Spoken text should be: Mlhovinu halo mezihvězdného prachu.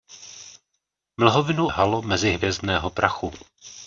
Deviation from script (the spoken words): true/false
false